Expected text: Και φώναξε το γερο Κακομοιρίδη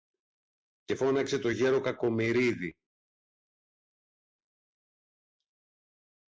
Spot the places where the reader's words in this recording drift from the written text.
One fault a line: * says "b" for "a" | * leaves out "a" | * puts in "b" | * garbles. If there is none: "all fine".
all fine